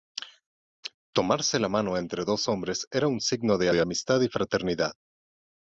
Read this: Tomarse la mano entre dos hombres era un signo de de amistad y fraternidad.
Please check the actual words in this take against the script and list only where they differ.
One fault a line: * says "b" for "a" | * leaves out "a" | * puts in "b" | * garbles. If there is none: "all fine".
all fine